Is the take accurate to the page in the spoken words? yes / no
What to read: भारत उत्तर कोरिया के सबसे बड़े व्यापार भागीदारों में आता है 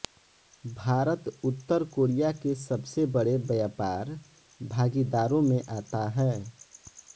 yes